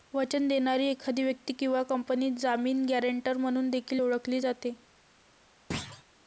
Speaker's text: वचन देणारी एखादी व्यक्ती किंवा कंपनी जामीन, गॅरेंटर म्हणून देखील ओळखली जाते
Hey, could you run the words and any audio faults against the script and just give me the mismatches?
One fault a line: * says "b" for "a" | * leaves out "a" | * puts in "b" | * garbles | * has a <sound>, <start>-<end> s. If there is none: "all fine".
* has a thud, 5.7-6.0 s